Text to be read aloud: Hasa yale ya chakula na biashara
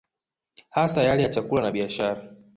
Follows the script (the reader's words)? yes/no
yes